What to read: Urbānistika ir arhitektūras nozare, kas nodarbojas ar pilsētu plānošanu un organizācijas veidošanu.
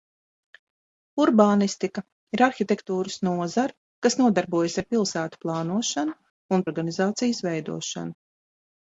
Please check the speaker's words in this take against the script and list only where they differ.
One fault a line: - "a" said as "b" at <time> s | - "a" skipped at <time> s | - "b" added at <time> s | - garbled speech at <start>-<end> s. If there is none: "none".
none